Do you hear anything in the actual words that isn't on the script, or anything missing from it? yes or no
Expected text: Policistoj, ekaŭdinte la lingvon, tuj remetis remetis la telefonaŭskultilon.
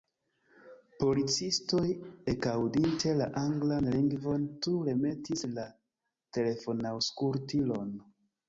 yes